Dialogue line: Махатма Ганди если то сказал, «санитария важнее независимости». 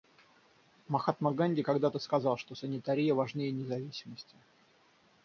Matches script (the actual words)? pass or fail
fail